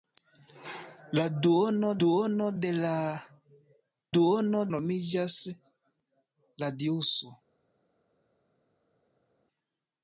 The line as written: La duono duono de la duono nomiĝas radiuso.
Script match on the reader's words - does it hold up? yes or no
yes